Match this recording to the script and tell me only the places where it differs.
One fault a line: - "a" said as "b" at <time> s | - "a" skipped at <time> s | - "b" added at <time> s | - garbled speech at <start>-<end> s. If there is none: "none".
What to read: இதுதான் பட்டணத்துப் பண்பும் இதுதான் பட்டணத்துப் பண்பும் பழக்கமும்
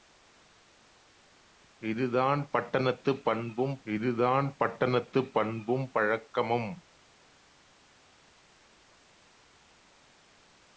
none